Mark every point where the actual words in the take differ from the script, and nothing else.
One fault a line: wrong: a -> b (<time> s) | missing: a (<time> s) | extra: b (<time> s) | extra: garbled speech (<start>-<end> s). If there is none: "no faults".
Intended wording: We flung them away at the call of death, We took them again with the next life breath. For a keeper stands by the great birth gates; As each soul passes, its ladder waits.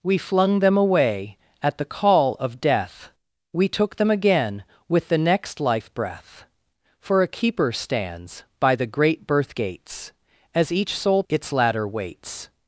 missing: passes (11.2 s)